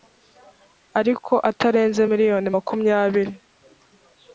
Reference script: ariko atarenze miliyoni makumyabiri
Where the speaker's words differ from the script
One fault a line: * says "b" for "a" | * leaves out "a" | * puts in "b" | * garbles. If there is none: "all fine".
all fine